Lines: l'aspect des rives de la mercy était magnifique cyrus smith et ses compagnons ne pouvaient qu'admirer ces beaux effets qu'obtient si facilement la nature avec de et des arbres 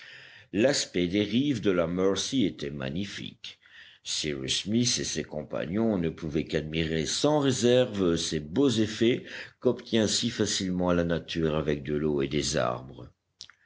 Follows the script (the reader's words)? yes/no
no